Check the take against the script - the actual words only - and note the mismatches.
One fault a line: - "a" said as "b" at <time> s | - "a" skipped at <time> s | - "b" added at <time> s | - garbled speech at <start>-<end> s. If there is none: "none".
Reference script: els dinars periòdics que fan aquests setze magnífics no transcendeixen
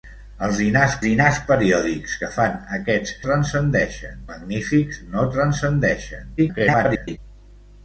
- "dinars" added at 1.0 s
- "setze" said as "transcendeixen" at 3.3 s
- garbled speech at 6.4-7.2 s